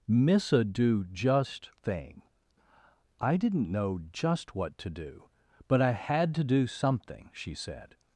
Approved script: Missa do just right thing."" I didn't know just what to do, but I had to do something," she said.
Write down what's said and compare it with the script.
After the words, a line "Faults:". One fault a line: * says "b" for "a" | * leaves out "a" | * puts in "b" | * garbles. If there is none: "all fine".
Missa do just thing."" I didn't know just what to do, but I had to do something," she said.
Faults:
* leaves out "right"